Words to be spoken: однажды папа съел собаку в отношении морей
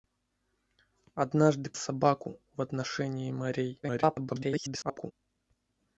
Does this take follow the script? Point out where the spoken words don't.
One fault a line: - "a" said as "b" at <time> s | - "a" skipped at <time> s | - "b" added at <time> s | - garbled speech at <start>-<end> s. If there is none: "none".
- "папа съел" skipped at 1.7 s
- garbled speech at 3.8-5.1 s